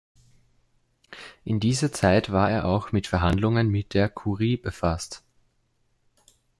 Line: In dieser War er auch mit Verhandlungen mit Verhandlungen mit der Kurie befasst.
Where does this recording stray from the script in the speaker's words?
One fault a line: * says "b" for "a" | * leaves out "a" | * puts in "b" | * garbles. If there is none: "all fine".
* puts in "Zeit"
* leaves out "Verhandlungen mit"